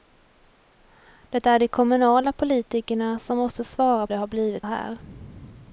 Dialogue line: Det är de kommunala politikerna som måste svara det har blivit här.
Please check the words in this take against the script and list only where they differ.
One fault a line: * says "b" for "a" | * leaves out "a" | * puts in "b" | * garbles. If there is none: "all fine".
all fine